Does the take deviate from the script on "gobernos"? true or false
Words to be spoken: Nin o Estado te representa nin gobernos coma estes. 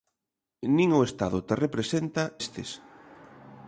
true